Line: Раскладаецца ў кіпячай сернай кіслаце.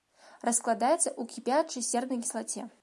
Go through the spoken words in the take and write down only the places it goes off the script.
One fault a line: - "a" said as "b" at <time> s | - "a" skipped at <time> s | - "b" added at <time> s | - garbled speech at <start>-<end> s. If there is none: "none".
none